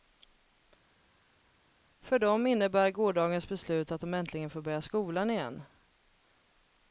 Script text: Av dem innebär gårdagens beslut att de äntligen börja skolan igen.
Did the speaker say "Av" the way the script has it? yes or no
no